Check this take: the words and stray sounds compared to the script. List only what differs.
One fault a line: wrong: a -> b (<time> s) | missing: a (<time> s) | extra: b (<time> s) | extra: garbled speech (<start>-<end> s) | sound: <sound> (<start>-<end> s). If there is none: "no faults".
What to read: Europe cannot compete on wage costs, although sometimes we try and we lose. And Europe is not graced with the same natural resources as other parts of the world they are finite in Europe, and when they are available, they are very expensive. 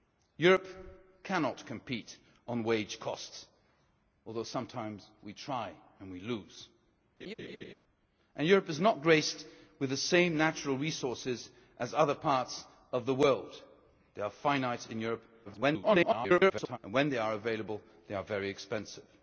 sound: laugh (7.2-7.7 s)
extra: garbled speech (15.5-16.8 s)